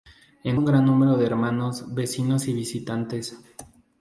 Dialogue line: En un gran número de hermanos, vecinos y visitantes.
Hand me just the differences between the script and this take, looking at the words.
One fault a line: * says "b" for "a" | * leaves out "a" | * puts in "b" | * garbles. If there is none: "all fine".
all fine